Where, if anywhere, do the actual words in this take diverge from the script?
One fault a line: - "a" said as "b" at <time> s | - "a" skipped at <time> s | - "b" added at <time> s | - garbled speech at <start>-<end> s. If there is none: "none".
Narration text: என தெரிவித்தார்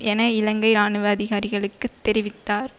- "இலங்கை இராணுவ அதிகாரிகளுக்கு" added at 0.3 s